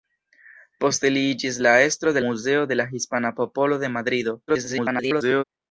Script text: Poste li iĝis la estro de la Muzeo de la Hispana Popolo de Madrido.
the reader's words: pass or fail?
fail